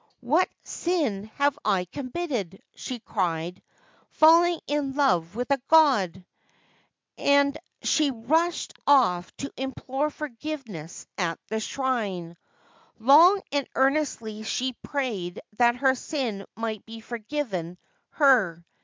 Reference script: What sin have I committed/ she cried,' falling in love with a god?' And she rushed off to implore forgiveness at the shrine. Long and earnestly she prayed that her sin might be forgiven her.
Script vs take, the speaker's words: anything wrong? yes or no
no